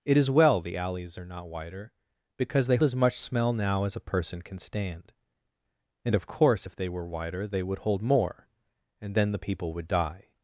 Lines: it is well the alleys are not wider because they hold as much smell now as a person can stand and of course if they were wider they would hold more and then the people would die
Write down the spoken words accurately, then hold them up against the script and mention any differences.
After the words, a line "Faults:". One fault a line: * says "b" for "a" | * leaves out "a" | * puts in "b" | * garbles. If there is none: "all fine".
it is well the alleys are not wider because they as much smell now as a person can stand and of course if they were wider they would hold more and then the people would die
Faults:
* leaves out "hold"